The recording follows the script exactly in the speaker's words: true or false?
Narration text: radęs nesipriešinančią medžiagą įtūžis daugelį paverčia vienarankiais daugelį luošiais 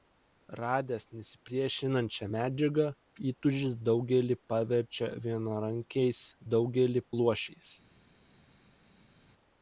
true